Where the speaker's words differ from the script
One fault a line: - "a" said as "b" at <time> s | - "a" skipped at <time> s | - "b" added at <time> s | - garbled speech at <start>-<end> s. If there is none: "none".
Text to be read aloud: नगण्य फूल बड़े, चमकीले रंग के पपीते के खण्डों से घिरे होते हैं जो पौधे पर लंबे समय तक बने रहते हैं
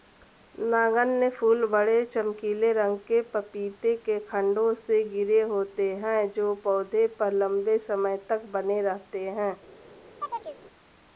none